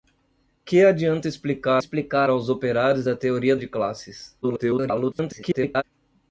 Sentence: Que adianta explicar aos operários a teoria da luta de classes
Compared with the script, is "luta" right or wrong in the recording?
wrong